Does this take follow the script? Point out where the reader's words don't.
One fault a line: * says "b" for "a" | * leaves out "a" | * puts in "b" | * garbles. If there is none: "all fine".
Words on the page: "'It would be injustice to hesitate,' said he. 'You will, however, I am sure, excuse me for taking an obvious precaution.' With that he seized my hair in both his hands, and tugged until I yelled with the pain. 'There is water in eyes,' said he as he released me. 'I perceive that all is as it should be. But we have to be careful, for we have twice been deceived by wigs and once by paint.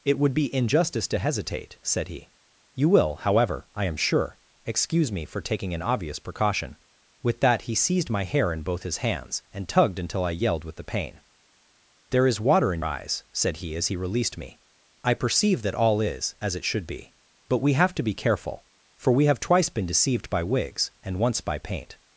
all fine